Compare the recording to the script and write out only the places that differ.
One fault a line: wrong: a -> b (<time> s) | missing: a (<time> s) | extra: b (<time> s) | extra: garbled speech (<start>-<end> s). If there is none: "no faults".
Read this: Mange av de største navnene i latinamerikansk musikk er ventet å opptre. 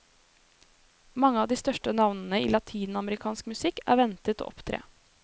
no faults